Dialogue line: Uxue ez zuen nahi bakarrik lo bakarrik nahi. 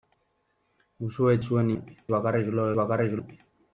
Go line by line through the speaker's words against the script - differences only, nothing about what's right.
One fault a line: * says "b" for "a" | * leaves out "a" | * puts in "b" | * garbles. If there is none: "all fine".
all fine